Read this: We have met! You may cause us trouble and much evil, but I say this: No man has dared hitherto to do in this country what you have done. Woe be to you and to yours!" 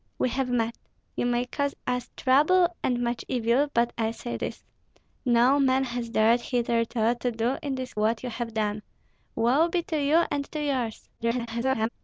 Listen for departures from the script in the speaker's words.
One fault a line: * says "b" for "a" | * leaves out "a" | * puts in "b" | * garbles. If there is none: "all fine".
* leaves out "country"
* garbles